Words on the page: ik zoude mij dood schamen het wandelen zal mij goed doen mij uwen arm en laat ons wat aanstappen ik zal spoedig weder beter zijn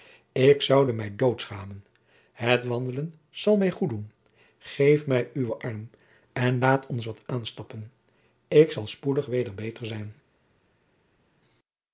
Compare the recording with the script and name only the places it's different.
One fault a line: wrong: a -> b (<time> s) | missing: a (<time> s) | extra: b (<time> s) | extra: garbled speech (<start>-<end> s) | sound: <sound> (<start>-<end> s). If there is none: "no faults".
extra: geef (4.6 s)